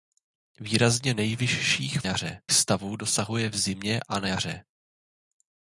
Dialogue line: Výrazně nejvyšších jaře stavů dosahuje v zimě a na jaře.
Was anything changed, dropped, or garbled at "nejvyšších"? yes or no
no